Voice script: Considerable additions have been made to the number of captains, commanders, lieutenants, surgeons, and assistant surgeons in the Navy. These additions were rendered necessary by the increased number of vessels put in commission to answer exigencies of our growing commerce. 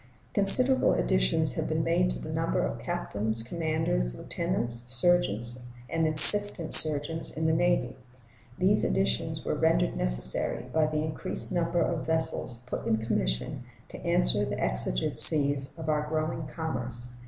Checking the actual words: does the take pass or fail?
fail